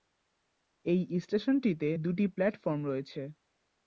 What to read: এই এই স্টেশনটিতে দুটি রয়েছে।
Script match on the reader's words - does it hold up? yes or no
no